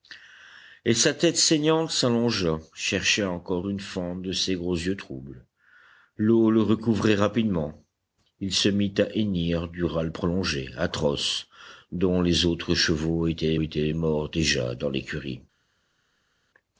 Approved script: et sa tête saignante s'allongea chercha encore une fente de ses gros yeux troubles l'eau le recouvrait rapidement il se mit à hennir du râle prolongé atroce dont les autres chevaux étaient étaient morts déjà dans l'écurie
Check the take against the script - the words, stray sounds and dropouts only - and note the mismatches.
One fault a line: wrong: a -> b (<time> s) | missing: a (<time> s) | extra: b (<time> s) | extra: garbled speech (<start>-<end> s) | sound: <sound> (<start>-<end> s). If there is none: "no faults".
no faults